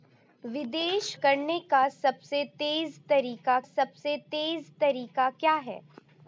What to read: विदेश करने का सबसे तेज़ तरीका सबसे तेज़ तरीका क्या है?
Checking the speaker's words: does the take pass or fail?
pass